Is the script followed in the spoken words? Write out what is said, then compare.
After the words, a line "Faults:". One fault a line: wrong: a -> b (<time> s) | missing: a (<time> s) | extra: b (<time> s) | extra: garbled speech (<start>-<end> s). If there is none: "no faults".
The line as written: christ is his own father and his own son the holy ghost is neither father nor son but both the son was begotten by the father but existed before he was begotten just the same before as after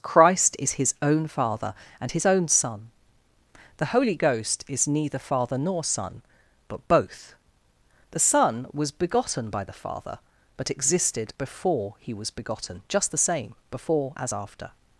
christ is his own father and his own son the holy ghost is neither father nor son but both the son was begotten by the father but existed before he was begotten just the same before as after
Faults:
no faults